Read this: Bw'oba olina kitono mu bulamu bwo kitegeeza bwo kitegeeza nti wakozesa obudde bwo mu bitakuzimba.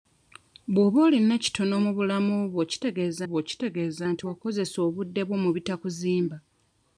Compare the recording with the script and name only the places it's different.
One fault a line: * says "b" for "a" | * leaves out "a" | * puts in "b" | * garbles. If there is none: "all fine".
all fine